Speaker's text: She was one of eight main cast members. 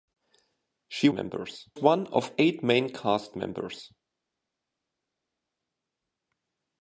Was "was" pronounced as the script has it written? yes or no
no